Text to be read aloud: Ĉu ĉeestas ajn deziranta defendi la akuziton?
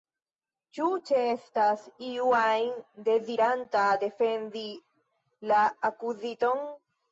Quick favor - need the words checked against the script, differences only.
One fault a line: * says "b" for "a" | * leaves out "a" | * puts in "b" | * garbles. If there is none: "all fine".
* puts in "iu"